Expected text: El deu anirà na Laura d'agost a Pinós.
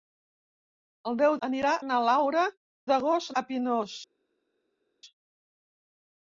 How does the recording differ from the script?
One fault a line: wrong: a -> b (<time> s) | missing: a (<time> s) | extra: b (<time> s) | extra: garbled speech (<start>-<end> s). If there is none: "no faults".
no faults